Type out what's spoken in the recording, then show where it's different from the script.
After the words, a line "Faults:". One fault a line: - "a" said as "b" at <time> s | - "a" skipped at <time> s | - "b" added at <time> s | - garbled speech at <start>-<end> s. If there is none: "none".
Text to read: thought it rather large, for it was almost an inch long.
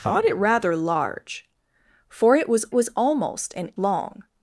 thought it rather large, for it was was almost an long.
Faults:
- "was" added at 2.7 s
- "inch" skipped at 3.7 s